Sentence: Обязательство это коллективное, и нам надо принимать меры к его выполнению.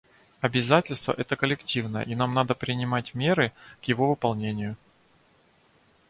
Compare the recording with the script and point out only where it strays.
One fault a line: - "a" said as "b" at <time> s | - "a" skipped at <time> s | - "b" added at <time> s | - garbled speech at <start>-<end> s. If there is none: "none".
none